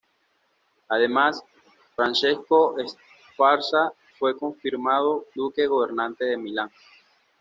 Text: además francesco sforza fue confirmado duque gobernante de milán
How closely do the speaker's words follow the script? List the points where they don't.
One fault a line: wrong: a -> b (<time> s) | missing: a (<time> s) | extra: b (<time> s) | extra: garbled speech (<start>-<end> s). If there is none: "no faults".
no faults